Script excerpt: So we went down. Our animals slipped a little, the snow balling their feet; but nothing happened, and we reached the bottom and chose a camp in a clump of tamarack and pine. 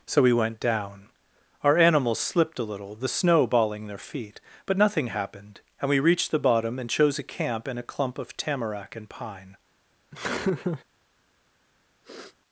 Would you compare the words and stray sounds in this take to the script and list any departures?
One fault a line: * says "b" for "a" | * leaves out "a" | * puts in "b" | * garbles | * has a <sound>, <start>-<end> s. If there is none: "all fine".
* has a laugh, 10.1-10.8 s
* has a sniff, 12.0-12.4 s